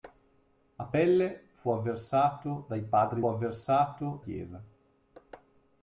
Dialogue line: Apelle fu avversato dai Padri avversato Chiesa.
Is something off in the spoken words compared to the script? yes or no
no